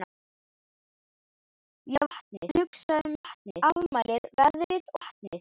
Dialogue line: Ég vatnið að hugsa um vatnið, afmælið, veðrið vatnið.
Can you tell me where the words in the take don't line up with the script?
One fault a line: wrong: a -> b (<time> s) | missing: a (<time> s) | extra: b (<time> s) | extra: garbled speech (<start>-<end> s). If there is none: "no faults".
no faults